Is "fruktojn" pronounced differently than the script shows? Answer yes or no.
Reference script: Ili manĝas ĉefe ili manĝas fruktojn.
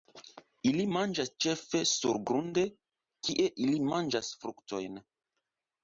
no